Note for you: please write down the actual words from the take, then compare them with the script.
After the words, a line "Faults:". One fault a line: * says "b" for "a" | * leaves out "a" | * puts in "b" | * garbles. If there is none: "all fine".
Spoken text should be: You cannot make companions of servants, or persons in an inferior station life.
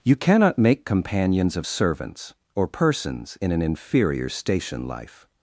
You cannot make companions of servants, or persons in an inferior station life.
Faults:
all fine